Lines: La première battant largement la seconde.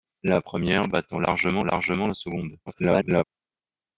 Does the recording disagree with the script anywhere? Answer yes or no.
yes